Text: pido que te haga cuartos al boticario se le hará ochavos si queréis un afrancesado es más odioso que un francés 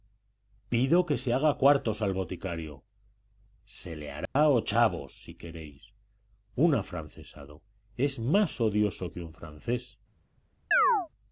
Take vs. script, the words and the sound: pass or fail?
fail